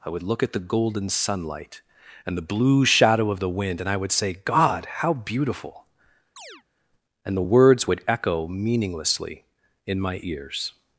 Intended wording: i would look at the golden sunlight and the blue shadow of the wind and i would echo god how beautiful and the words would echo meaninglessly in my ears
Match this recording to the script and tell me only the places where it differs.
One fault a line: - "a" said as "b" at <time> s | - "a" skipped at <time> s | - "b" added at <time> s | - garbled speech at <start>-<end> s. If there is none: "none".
- "echo" said as "say" at 4.1 s